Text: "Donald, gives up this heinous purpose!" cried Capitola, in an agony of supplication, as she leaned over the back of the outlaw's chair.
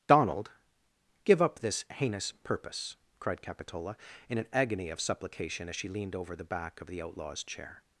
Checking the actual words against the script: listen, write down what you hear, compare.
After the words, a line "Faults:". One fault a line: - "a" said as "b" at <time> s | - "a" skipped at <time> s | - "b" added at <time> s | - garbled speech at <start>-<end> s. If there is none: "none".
"Donald, give up this heinous purpose!" cried Capitola, in an agony of supplication, as she leaned over the back of the outlaw's chair.
Faults:
- "gives" said as "give" at 1.2 s